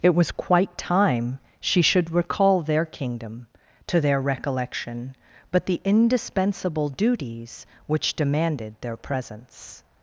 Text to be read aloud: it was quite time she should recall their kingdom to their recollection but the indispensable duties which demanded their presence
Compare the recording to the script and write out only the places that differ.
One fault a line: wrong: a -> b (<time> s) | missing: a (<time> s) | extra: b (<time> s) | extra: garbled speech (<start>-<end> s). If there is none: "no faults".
no faults